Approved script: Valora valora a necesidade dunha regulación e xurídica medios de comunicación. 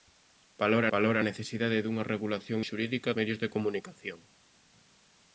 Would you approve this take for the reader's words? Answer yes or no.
yes